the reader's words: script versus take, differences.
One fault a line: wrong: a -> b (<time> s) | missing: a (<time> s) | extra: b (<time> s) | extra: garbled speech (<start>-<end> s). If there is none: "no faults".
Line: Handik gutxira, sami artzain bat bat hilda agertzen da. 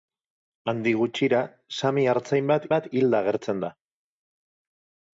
no faults